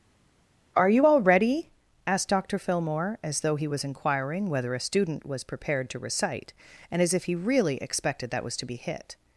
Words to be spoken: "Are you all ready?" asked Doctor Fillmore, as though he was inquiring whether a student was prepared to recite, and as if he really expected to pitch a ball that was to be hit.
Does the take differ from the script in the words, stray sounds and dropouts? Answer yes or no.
yes